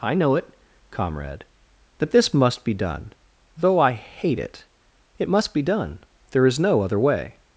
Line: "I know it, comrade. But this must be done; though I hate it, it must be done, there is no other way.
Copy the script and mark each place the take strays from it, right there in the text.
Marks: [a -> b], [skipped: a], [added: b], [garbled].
"I know it, comrade. [But -> That] this must be done; though I hate it, it must be done, there is no other way.